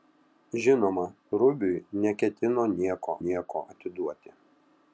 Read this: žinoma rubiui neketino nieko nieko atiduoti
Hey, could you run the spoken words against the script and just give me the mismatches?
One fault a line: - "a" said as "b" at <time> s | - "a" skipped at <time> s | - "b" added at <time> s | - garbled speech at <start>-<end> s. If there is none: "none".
none